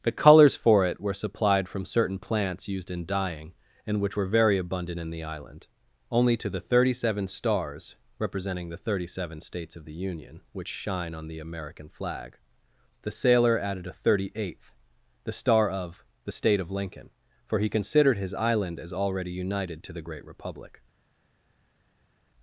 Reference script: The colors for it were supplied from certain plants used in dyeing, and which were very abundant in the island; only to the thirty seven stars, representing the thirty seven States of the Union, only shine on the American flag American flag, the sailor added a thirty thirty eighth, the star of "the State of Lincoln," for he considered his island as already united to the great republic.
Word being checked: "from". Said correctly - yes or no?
yes